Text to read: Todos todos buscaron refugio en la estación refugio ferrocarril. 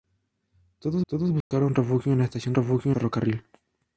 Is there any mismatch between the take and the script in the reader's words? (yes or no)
no